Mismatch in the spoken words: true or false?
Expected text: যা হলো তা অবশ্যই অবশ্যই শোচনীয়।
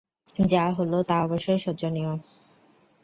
true